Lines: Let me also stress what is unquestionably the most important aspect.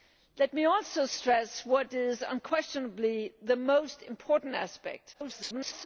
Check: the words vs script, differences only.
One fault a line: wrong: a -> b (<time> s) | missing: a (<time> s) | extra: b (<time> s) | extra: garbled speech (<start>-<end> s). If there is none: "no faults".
extra: garbled speech (5.1-5.9 s)